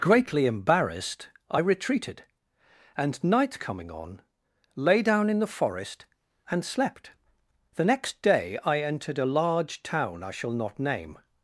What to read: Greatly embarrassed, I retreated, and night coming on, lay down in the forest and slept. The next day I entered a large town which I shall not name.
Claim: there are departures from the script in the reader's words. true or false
true